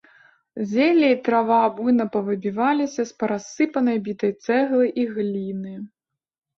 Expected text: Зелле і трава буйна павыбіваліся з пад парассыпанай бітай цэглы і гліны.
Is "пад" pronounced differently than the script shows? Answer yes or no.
yes